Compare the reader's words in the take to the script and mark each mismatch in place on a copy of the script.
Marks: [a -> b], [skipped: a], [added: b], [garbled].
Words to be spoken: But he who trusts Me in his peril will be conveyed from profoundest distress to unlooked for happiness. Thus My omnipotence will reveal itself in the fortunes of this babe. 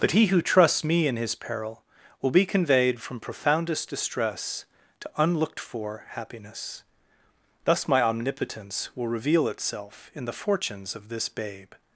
But he who trusts Me in his peril will be conveyed from profoundest distress to unlooked for happiness. Thus My omnipotence will reveal itself in the fortunes of this babe.